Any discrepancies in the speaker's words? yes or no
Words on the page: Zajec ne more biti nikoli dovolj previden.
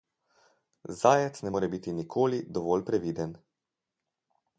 no